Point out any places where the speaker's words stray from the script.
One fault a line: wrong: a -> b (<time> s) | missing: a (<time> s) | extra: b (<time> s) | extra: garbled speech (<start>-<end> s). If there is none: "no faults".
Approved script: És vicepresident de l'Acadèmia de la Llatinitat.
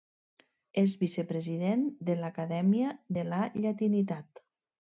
no faults